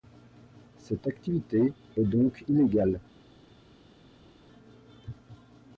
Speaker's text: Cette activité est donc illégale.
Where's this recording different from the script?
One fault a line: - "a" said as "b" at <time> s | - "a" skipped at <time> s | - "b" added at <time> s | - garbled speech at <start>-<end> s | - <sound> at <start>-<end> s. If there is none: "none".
none